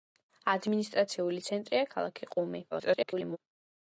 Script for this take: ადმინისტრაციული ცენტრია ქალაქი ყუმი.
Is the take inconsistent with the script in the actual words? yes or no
yes